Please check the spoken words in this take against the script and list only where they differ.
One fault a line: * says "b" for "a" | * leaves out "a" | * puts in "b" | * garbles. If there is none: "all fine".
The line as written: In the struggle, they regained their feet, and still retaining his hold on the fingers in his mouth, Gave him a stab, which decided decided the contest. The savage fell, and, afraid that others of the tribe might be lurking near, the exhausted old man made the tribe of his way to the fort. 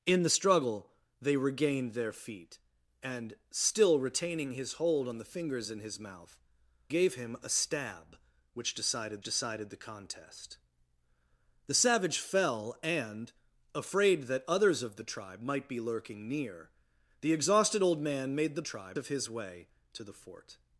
all fine